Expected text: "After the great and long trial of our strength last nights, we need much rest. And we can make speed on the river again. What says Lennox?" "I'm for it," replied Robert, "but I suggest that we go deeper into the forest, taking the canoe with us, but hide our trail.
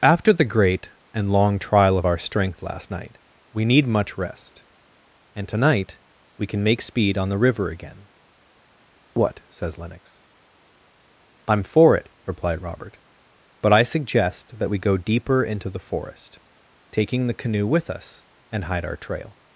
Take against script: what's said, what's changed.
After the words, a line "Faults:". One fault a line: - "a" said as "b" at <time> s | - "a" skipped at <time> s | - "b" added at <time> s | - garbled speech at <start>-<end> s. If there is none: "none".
"After the great and long trial of our strength last night, we need much rest. And tonight we can make speed on the river again. What says Lennox?" "I'm for it," replied Robert, "but I suggest that we go deeper into the forest, taking the canoe with us, and hide our trail.
Faults:
- "nights" said as "night" at 2.9 s
- "tonight" added at 5.5 s
- "but" said as "and" at 18.5 s